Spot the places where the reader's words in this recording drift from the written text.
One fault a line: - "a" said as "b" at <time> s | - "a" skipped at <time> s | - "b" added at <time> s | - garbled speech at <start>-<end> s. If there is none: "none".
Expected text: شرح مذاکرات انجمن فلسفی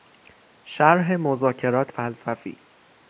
- "انجمن" skipped at 1.9 s